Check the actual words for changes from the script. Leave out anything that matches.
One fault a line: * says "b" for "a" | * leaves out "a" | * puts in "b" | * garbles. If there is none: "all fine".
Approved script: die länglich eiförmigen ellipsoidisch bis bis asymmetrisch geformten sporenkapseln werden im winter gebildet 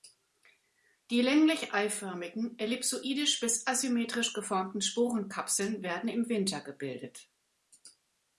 * leaves out "bis"